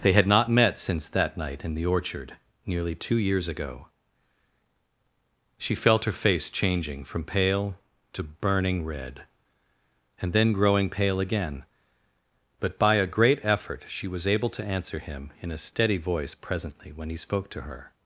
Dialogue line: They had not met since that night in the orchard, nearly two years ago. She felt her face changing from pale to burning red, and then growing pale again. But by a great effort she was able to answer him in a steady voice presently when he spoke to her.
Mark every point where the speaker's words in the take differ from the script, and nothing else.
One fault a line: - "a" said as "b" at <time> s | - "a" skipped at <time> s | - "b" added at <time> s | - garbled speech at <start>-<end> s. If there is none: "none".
none